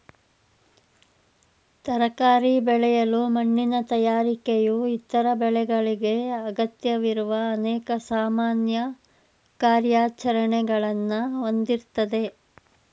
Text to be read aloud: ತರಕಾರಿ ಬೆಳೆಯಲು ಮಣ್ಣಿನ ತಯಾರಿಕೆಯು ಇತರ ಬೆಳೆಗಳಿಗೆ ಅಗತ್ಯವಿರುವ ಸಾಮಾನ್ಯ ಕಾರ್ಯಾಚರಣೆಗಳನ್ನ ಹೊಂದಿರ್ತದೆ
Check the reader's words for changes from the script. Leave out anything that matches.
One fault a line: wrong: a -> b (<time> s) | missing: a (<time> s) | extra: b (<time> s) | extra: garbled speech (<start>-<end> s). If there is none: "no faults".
extra: ಅನೇಕ (7.5 s)